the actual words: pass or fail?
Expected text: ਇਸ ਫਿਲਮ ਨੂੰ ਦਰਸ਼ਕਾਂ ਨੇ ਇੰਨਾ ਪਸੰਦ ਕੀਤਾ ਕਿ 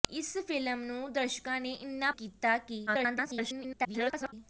fail